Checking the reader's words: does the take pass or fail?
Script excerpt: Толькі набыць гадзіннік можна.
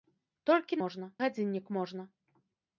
fail